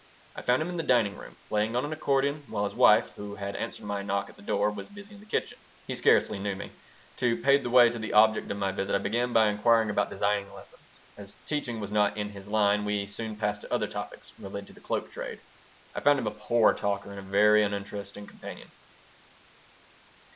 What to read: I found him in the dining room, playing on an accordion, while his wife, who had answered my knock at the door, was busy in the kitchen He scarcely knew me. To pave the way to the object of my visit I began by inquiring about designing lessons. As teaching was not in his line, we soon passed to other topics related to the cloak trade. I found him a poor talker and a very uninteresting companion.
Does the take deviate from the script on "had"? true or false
false